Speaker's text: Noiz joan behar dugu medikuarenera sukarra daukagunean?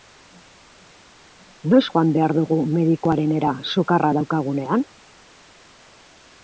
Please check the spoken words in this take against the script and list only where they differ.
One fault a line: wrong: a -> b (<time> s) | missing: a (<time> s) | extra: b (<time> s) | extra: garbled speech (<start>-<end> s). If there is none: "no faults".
no faults